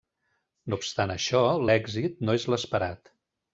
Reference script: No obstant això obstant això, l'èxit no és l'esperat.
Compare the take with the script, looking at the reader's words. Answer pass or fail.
fail